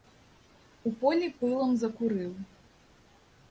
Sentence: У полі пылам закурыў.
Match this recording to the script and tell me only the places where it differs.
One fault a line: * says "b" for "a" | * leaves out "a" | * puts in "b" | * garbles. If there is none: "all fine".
all fine